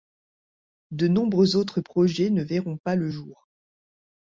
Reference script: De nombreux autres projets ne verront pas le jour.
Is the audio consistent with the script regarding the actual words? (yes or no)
yes